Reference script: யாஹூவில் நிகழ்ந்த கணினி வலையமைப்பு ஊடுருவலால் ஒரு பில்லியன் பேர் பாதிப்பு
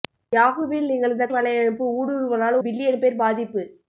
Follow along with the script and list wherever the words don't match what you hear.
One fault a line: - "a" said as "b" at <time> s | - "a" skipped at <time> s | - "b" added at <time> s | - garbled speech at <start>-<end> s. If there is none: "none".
- "கணினி" skipped at 1.3 s
- "ஒரு" skipped at 2.6 s